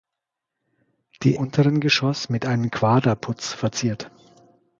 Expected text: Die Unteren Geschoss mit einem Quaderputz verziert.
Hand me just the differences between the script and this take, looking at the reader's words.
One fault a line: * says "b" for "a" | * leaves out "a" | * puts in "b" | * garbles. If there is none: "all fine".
all fine